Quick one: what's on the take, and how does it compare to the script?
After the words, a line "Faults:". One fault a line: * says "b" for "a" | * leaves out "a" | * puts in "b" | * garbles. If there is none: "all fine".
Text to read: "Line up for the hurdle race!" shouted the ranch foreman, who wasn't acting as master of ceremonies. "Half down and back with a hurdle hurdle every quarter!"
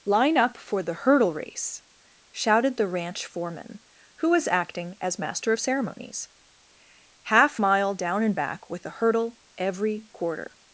"Line up for the hurdle race!" shouted the ranch foreman, who was acting as master of ceremonies. "Half mile down and back with a hurdle every quarter!"
Faults:
* says "was" for "wasn't"
* puts in "mile"
* leaves out "hurdle"